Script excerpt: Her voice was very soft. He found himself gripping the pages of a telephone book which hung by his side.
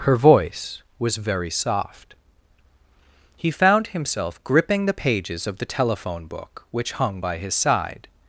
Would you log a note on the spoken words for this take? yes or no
yes